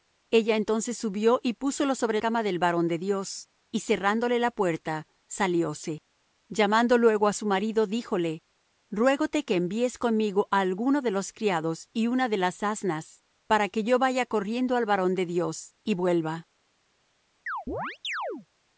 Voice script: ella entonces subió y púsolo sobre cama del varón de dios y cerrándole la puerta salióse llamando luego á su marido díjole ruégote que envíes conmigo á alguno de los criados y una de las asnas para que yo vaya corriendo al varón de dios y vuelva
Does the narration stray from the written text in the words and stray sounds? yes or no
yes